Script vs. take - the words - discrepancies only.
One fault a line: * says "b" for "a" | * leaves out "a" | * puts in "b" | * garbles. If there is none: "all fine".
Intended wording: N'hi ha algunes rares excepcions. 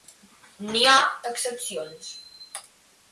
* leaves out "algunes rares"